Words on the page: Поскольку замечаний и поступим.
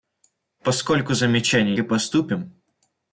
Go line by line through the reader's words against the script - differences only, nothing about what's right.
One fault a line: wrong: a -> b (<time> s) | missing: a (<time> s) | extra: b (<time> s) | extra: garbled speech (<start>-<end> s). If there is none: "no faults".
no faults